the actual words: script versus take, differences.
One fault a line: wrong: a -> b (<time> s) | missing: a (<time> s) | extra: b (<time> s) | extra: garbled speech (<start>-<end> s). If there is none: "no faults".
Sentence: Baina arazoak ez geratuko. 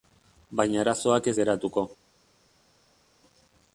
no faults